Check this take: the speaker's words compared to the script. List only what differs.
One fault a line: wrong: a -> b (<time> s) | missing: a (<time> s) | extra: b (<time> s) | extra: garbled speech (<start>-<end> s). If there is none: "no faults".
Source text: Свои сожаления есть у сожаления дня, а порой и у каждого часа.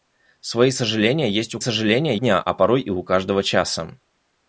no faults